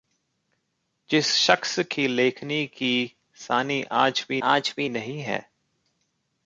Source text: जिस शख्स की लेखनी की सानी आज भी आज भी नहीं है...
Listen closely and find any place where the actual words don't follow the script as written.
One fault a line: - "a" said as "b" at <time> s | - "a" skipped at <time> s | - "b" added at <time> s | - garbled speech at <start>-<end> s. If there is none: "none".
none